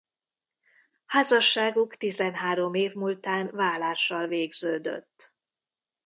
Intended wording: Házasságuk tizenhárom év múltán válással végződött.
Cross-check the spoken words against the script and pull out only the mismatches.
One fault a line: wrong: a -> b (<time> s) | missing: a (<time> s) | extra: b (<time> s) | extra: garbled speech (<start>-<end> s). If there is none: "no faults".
no faults